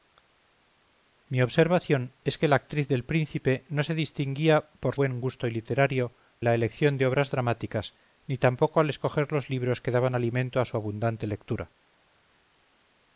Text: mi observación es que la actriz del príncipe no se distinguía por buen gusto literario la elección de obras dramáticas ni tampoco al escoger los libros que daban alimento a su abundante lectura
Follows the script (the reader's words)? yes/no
yes